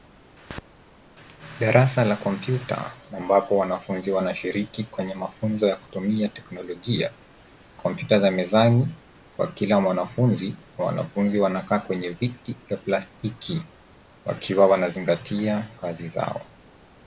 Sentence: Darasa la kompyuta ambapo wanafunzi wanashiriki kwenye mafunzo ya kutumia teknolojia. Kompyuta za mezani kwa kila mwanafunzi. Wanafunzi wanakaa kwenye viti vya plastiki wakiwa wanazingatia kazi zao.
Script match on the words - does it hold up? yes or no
yes